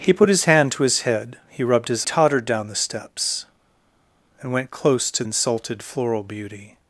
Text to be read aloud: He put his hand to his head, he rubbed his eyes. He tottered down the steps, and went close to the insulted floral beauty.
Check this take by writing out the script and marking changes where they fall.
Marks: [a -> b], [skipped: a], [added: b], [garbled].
He put his hand to his head, he rubbed his [skipped: eyes. He] tottered down the steps, and went close to [skipped: the] insulted floral beauty.